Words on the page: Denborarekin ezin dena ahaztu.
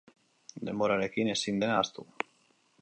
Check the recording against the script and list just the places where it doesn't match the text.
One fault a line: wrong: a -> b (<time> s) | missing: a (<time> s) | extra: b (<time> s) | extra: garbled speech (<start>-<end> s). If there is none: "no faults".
no faults